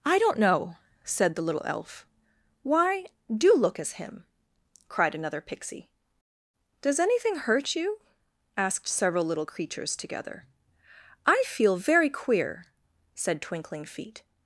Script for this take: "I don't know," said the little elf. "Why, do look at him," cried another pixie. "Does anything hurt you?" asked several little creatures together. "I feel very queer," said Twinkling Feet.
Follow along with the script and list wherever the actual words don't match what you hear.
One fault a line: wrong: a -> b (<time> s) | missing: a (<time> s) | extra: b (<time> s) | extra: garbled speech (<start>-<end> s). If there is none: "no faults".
wrong: at -> as (3.8 s)